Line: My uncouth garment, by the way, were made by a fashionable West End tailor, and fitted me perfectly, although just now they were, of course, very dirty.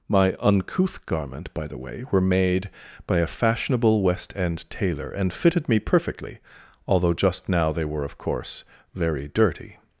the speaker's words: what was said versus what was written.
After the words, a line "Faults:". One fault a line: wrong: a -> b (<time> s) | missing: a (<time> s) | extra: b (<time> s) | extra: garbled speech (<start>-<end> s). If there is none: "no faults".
My uncouth garment, by the way, were made by a fashionable West End tailor, and fitted me perfectly, although just now they were, of course, very dirty.
Faults:
no faults